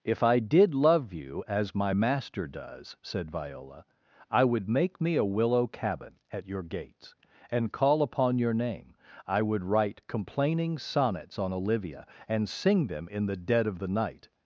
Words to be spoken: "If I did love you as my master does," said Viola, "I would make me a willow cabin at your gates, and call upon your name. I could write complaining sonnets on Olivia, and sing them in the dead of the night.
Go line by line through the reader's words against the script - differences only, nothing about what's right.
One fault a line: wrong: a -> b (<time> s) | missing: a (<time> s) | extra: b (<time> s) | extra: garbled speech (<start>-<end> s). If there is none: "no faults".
wrong: could -> would (9.4 s)